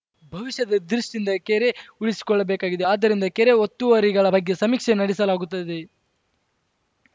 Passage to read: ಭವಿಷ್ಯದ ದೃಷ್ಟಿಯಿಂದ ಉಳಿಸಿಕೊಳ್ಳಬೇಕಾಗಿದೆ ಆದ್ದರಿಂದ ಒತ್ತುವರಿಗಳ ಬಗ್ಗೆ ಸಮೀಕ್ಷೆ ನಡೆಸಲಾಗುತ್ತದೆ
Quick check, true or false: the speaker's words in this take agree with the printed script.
false